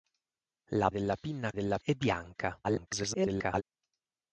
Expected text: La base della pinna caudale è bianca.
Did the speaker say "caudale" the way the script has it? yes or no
no